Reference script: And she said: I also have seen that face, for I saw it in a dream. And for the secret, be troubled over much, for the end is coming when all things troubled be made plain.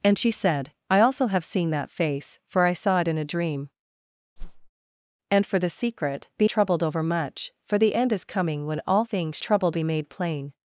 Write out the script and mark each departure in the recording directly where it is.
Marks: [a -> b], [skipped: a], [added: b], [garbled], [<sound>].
And she said: I also have seen that face, for I saw it in a dream. [whoosh] And for the secret, be troubled over much, for the end is coming when all things troubled be made plain.